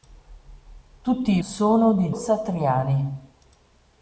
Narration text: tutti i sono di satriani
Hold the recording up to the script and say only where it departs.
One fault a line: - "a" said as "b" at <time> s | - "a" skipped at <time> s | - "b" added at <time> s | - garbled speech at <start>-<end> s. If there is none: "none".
none